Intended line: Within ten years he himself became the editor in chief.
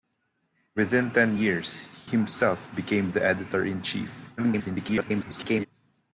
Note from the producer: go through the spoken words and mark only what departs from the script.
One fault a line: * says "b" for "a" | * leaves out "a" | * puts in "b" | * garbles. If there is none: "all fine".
* leaves out "he"
* garbles